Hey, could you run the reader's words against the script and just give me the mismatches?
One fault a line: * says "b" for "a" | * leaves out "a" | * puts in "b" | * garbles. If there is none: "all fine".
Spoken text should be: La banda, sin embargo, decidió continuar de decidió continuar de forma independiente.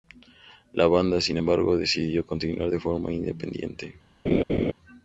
* leaves out "decidió continuar de"